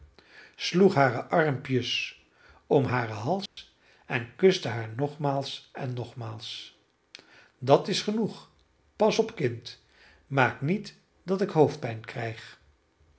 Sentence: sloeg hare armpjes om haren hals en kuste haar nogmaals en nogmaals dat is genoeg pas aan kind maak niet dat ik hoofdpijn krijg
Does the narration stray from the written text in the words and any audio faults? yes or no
yes